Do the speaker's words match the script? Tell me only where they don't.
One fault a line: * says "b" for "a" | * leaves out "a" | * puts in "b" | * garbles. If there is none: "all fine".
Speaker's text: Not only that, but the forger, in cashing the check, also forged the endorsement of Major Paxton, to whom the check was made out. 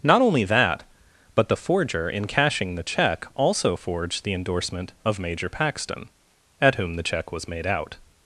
* says "at" for "to"